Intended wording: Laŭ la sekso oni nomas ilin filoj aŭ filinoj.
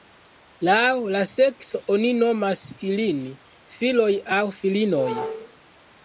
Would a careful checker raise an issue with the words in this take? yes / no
no